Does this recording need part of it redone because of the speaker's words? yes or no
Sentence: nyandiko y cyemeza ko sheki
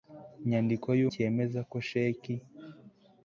no